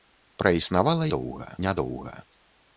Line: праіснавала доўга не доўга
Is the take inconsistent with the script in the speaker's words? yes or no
no